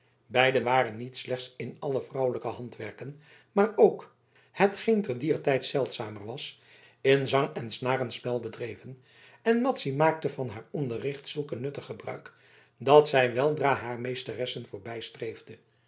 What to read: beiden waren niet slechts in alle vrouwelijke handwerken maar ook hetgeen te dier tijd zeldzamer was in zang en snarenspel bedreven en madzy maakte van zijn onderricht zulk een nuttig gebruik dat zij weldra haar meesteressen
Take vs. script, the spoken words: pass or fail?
fail